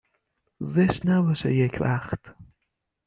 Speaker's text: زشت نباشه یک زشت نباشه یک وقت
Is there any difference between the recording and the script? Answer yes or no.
yes